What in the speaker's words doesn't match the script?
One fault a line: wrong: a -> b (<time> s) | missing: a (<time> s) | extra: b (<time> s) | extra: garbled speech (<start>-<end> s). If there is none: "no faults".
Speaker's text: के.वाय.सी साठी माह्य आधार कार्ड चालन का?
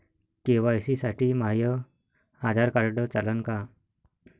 no faults